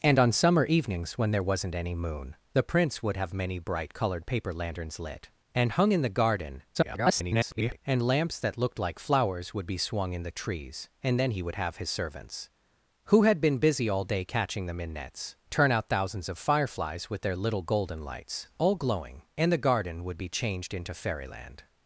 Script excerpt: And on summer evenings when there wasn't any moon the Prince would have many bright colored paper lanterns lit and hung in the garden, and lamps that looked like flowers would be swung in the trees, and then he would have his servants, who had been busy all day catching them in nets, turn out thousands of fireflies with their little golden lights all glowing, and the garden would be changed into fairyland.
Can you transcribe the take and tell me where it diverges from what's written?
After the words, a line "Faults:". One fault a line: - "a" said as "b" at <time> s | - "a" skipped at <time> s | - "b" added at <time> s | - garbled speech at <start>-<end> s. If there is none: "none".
And on summer evenings when there wasn't any moon the Prince would have many bright colored paper lanterns lit and hung in the garden, [garbled] and lamps that looked like flowers would be swung in the trees, and then he would have his servants, who had been busy all day catching them in nets, turn out thousands of fireflies with their little golden lights all glowing, and the garden would be changed into fairyland.
Faults:
- garbled speech at 6.7-7.8 s